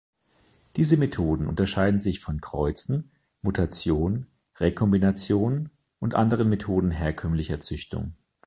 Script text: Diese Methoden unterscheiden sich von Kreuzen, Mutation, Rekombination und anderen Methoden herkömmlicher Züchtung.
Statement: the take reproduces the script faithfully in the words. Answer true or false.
true